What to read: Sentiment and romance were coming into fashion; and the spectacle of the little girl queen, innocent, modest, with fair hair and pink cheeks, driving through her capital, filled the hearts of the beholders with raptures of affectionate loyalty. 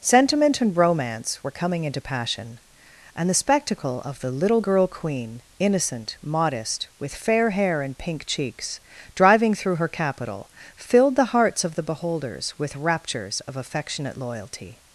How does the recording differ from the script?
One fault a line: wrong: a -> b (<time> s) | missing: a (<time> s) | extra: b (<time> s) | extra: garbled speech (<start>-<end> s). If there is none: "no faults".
wrong: fashion -> passion (2.0 s)